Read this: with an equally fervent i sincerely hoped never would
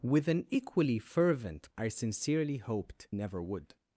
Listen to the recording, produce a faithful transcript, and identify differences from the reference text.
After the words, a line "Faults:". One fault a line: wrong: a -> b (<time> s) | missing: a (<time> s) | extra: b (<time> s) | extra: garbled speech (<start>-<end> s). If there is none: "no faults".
with an equally fervent i sincerely hoped never would
Faults:
no faults